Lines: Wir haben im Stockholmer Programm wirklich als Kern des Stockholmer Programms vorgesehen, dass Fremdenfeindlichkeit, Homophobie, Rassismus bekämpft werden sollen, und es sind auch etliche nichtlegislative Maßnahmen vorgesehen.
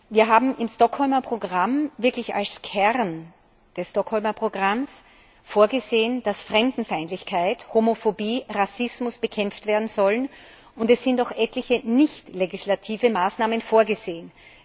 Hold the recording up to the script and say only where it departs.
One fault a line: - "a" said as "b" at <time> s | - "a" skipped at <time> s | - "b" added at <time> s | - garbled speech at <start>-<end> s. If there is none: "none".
none